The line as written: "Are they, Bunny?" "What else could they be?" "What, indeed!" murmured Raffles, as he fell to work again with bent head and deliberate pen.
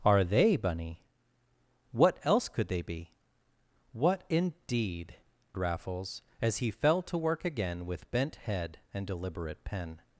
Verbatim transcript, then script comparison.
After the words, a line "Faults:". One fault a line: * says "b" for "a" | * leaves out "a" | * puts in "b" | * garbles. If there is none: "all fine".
"Are they, Bunny?" "What else could they be?" "What, indeed!" Raffles, as he fell to work again with bent head and deliberate pen.
Faults:
* leaves out "murmured"